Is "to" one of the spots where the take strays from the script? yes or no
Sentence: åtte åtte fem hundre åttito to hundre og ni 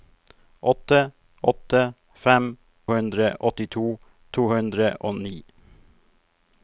no